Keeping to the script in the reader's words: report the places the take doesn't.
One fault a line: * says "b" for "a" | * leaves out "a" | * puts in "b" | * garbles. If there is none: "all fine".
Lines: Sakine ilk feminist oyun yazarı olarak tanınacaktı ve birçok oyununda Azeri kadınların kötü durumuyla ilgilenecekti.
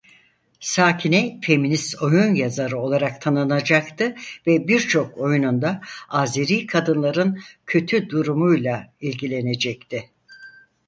* leaves out "ilk"